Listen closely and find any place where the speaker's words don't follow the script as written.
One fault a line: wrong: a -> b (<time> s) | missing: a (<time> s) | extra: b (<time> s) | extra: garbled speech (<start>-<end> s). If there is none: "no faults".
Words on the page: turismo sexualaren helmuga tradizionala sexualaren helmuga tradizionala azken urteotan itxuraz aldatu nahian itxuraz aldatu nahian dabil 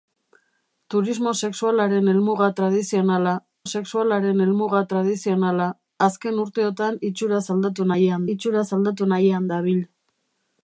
no faults